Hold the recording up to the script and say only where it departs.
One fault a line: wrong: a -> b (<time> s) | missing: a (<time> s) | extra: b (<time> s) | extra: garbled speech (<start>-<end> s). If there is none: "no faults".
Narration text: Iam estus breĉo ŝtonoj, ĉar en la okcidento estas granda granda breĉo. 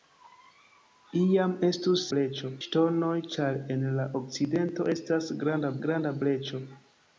no faults